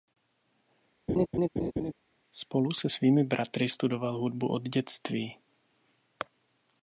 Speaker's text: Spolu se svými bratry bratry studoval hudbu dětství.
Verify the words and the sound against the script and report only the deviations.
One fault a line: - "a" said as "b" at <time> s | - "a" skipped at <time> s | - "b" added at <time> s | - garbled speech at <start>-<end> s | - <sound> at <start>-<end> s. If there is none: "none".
- laugh at 1.1-1.9 s
- "bratry" skipped at 3.7 s
- "od" added at 4.5 s